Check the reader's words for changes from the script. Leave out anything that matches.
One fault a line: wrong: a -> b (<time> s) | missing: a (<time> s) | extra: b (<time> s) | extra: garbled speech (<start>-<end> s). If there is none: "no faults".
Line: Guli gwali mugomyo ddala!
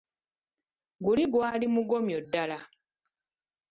no faults